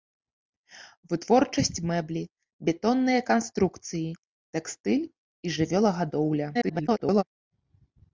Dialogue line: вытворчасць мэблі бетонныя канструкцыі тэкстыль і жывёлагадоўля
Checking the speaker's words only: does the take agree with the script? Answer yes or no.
no